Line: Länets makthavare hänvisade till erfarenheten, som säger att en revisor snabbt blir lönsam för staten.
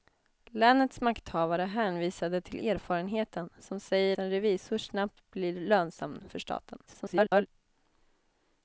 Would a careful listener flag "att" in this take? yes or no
yes